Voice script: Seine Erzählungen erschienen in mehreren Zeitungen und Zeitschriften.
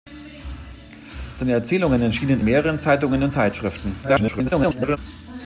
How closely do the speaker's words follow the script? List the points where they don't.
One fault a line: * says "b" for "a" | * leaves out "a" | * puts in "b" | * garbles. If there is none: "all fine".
* leaves out "in"
* garbles